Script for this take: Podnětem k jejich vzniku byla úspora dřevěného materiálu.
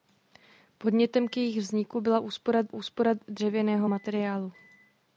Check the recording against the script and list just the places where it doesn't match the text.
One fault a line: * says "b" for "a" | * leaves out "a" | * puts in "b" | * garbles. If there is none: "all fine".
* puts in "úspora"